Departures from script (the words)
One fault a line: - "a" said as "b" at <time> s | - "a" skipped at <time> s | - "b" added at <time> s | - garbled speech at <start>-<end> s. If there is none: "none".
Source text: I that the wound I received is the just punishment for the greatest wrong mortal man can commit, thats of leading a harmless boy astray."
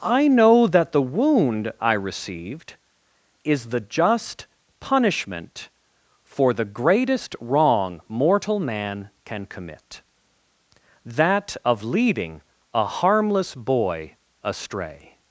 - "know" added at 0.3 s
- "thats" said as "that" at 11.0 s